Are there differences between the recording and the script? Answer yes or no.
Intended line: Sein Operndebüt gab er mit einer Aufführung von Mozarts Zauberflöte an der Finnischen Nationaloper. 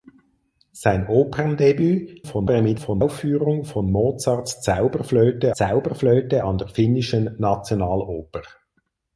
yes